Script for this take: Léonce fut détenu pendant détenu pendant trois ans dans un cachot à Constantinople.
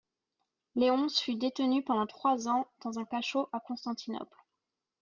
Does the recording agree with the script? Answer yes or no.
no